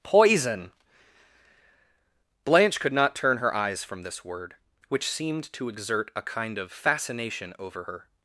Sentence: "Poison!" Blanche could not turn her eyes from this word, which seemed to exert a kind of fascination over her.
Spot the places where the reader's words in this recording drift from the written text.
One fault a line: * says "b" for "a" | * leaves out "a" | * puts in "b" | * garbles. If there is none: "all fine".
all fine